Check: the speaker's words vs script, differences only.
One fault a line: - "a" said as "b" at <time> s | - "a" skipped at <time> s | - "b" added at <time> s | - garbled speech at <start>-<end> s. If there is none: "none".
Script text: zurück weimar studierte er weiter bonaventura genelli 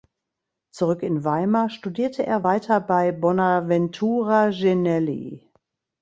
- "in" added at 1.0 s
- "bei" added at 2.8 s